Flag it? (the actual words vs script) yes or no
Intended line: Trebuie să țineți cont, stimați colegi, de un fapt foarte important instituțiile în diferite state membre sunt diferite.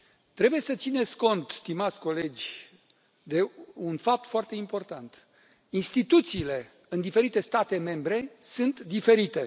no